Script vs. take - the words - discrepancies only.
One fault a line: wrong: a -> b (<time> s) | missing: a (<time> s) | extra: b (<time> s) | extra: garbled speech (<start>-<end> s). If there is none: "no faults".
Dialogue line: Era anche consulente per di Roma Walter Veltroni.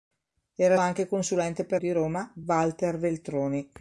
no faults